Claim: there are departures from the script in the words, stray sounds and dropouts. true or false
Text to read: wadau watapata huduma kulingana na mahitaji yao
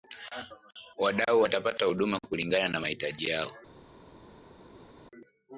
false